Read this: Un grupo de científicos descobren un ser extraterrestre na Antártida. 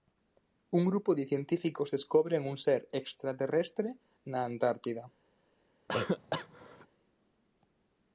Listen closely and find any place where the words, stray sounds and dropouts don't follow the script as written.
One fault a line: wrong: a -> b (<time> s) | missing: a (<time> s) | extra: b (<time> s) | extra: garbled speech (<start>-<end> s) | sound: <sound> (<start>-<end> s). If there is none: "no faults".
sound: cough (5.9-6.9 s)